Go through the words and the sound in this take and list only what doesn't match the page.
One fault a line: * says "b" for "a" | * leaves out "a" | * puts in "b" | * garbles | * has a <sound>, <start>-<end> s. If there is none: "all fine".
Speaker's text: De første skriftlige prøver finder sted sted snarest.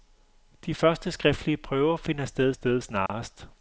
* has a dropout, 3.1-3.1 s